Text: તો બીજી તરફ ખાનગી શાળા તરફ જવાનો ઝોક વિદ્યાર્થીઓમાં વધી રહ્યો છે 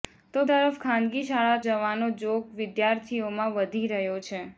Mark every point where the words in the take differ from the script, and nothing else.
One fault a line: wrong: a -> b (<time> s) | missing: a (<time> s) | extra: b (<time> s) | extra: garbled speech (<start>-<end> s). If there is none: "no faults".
missing: બીજી (0.4 s)
missing: તરફ (1.6 s)